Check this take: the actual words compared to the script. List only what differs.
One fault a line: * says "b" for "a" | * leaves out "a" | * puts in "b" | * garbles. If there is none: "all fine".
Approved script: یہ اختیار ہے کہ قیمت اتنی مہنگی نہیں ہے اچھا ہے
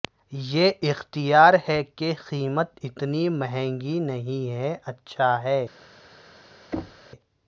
all fine